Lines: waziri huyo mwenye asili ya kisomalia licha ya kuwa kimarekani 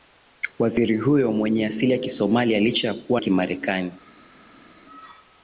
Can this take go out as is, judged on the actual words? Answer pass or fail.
pass